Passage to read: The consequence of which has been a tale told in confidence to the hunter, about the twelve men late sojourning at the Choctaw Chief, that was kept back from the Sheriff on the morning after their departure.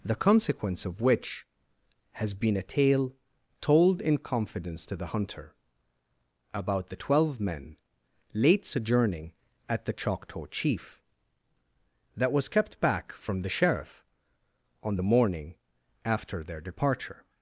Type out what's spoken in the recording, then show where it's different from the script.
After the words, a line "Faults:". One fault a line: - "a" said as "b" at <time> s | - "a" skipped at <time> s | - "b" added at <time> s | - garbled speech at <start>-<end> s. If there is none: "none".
The consequence of which has been a tale told in confidence to the hunter, about the twelve men late sojourning at the Choctaw Chief, that was kept back from the Sheriff on the morning after their departure.
Faults:
none